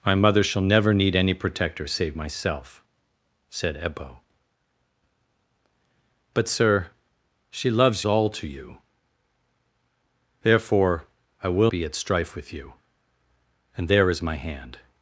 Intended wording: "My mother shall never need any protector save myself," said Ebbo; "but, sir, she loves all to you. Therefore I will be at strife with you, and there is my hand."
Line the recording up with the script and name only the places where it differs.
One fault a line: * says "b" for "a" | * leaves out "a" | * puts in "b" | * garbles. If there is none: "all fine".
all fine